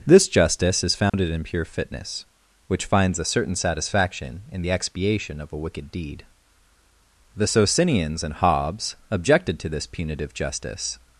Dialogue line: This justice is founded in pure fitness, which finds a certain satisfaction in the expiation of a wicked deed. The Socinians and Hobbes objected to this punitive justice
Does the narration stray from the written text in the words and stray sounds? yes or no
yes